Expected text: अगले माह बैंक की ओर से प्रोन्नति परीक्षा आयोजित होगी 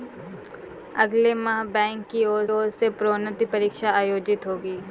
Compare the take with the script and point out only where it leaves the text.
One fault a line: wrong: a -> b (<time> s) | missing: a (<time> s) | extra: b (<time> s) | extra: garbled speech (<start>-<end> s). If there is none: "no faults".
extra: ओर (2.5 s)